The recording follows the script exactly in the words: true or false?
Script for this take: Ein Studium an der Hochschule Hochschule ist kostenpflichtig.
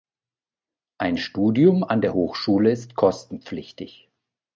false